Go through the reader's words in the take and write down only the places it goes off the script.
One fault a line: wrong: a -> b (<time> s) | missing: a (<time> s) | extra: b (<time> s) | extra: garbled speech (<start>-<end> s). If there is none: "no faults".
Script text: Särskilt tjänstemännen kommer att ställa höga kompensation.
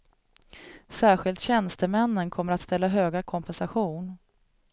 no faults